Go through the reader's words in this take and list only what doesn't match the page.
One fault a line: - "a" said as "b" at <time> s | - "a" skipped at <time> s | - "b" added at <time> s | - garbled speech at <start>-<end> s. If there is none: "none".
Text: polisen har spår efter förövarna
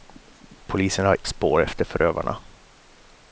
none